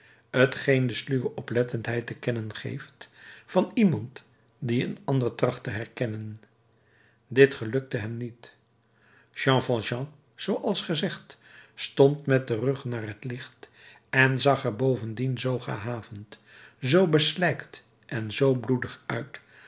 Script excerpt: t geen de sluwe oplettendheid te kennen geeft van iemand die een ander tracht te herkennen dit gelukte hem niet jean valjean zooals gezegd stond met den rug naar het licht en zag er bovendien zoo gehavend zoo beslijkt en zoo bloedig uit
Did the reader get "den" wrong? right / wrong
right